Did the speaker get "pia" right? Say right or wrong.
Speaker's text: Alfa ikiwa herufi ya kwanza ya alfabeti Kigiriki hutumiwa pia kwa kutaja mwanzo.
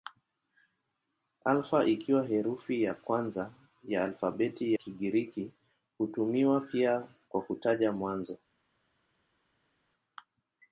right